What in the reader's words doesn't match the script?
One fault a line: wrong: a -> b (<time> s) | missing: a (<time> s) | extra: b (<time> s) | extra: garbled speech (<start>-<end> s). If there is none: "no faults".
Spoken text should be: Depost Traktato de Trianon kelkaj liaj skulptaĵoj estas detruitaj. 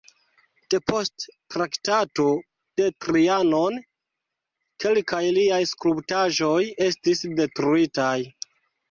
wrong: estas -> estis (6.9 s)